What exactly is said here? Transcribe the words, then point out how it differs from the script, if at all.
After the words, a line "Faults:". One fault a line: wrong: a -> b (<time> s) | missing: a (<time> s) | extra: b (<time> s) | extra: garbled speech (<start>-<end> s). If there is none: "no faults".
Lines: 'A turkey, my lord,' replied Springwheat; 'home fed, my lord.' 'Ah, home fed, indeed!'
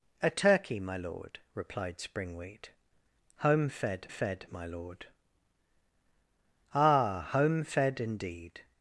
'A turkey, my lord,' replied Springwheat; 'home fed fed, my lord.' 'Ah, home fed, indeed!'
Faults:
extra: fed (4.1 s)